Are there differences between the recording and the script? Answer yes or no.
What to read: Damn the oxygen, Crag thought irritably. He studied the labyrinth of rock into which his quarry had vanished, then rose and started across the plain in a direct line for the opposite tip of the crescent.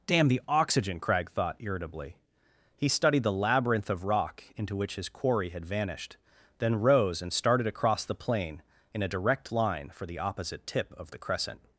no